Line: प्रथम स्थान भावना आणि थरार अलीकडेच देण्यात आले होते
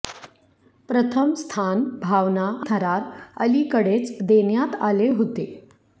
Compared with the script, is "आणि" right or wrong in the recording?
wrong